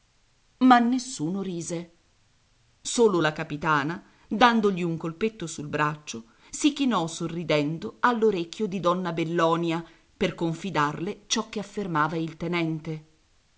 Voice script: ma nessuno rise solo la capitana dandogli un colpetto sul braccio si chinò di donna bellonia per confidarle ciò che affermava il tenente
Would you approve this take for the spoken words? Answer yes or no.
no